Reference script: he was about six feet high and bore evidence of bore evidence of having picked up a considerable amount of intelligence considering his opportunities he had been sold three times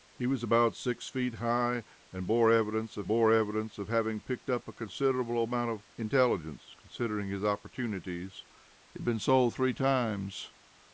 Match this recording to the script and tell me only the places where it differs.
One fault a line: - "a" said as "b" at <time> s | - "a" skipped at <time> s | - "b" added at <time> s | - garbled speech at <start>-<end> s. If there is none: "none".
none